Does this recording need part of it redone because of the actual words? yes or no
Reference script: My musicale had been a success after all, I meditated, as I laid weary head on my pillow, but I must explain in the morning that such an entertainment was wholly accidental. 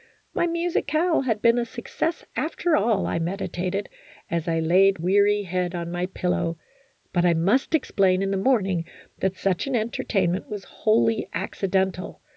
no